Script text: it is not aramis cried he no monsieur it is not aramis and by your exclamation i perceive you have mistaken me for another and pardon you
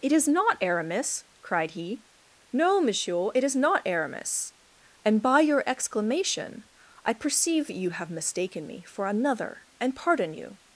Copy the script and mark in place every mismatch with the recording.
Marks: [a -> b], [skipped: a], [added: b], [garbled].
it is not aramis cried he no monsieur it is not aramis and by your exclamation i perceive you have mistaken me for another and pardon you